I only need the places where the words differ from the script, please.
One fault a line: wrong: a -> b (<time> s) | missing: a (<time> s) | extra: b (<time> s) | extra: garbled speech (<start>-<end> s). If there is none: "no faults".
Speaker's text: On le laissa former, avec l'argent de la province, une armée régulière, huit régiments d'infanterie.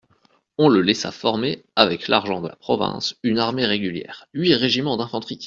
no faults